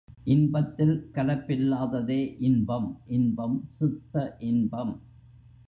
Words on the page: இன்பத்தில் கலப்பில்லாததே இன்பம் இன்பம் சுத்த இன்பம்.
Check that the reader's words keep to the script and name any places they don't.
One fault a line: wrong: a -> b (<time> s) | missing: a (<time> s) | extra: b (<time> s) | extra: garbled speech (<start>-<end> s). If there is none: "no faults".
no faults